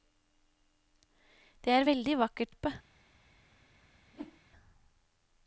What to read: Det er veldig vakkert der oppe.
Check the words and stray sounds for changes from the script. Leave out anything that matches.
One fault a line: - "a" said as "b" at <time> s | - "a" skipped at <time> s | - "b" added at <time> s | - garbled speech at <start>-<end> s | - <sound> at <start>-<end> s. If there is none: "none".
- "der" skipped at 2.5 s
- whoosh at 4.1-4.4 s